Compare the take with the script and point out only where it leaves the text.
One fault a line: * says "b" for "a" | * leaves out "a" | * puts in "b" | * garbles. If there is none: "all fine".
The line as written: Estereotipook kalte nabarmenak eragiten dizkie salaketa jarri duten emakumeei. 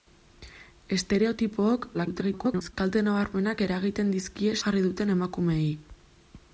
* garbles
* leaves out "salaketa"